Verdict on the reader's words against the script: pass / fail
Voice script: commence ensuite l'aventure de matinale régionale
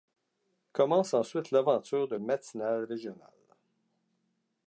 pass